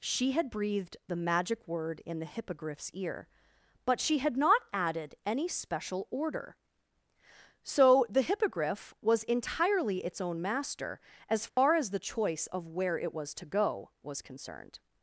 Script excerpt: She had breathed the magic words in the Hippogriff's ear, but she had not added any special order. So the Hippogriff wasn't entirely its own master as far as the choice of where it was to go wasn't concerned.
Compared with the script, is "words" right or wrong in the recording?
wrong